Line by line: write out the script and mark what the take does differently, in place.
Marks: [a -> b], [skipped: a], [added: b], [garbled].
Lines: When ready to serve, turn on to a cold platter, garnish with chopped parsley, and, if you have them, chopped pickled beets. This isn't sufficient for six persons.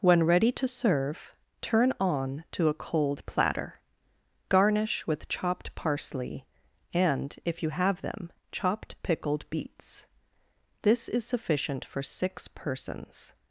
When ready to serve, turn on to a cold platter, garnish with chopped parsley, and, if you have them, chopped pickled beets. This [isn't -> is] sufficient for six persons.